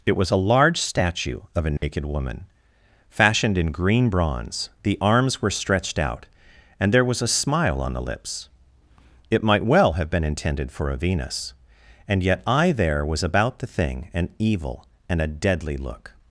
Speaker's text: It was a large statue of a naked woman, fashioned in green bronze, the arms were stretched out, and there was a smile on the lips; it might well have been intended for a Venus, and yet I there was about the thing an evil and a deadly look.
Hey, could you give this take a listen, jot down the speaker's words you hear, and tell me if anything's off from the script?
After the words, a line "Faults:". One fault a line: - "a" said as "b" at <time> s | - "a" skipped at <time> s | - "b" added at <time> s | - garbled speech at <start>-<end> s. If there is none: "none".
It was a large statue of a naked woman, fashioned in green bronze, the arms were stretched out, and there was a smile on the lips; it might well have been intended for a Venus, and yet I there was about the thing an evil and a deadly look.
Faults:
none